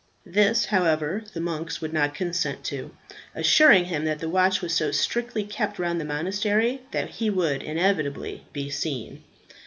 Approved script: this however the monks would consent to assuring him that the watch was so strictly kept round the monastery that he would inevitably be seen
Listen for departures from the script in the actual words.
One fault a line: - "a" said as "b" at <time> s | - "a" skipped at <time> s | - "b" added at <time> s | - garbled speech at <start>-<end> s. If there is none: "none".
- "not" added at 1.9 s